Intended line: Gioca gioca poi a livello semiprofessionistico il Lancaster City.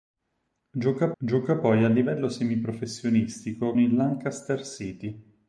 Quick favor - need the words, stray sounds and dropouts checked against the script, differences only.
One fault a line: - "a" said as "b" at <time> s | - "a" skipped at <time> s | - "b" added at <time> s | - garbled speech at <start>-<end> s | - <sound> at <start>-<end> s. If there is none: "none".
none